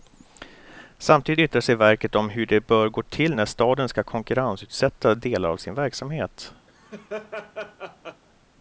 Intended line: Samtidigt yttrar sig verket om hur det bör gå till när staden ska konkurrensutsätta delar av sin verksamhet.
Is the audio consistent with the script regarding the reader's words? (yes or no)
yes